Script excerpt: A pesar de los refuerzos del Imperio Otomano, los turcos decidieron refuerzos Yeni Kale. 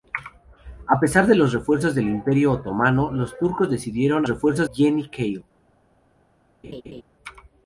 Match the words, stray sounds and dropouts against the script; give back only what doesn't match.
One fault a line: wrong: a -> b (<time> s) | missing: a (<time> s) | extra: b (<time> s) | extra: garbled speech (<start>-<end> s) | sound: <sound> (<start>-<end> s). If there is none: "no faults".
sound: laugh (6.6-7.0 s)